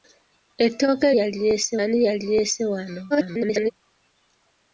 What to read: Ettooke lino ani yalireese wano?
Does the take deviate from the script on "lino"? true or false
true